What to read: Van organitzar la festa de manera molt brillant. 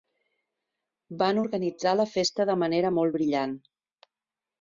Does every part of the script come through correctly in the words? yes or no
yes